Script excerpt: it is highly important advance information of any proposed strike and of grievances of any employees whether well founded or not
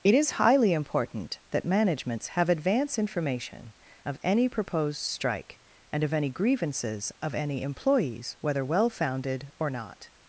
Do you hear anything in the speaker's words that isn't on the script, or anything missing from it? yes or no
yes